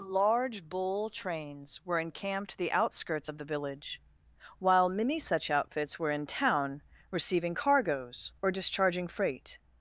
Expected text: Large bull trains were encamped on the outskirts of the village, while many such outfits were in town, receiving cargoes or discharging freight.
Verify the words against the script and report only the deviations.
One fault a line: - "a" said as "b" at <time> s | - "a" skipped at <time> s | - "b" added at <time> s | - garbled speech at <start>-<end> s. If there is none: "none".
- "on" skipped at 2.6 s